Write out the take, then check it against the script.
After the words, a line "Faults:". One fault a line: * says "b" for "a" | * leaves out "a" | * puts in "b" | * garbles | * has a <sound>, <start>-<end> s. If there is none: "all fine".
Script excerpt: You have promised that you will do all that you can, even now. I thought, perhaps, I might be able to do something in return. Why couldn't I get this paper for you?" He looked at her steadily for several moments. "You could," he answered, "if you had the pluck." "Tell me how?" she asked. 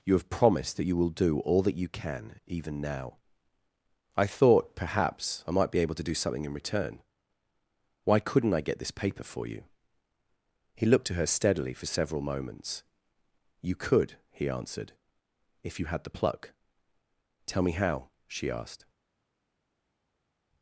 You have promised that you will do all that you can, even now. I thought, perhaps, I might be able to do something in return. Why couldn't I get this paper for you?" He looked at her steadily for several moments. "You could," he answered, "if you had the pluck." "Tell me how?" she asked.
Faults:
all fine